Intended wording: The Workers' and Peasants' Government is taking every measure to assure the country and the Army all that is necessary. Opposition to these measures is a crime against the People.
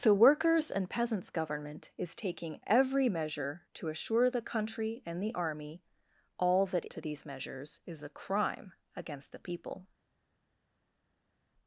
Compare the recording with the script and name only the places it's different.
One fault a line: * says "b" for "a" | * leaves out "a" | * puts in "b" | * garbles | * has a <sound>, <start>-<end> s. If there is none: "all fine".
* leaves out "is necessary Opposition"